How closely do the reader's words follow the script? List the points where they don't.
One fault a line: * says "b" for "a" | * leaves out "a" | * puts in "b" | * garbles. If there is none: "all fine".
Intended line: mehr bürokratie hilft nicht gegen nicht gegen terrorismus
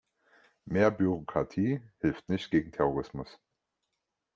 * leaves out "nicht gegen"